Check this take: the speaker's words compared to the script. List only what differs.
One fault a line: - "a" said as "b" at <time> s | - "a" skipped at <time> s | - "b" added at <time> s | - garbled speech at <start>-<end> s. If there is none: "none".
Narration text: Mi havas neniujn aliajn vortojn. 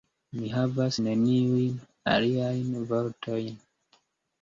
none